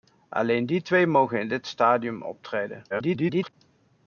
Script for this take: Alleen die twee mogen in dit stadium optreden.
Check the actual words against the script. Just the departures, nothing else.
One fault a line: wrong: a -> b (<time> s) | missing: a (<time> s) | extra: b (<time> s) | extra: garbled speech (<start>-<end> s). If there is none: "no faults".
extra: garbled speech (2.9-3.5 s)